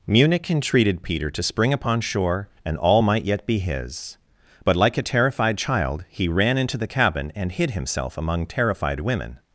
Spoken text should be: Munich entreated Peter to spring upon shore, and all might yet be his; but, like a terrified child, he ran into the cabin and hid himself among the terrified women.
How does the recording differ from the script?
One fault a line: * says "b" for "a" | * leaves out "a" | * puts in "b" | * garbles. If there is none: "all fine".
* leaves out "the"